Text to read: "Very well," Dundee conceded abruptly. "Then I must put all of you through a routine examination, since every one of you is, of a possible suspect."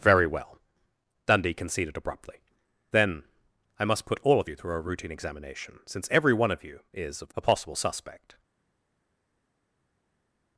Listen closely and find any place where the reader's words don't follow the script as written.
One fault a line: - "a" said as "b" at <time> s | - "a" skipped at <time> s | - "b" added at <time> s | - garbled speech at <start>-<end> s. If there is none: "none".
none